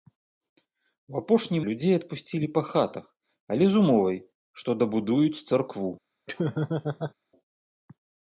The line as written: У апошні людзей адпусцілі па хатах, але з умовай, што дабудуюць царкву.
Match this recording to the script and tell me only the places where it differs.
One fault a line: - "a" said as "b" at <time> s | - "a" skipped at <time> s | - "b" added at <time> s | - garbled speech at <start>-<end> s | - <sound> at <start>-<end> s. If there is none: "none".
- laugh at 6.3-7.1 s